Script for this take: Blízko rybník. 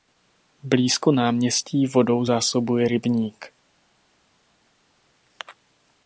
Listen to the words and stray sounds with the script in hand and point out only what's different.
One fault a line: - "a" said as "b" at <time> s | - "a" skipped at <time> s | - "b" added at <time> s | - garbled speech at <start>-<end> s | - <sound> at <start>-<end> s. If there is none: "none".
- "náměstí vodou zásobuje" added at 1.1 s